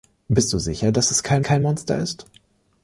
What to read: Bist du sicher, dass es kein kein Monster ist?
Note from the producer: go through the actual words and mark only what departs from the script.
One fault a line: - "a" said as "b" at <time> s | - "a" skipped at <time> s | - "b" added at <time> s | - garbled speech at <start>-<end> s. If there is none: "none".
none